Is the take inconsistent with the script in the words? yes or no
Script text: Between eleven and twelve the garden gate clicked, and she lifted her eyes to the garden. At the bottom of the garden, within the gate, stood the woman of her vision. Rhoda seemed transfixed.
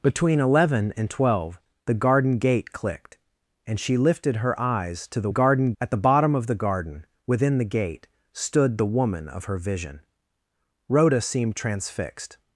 no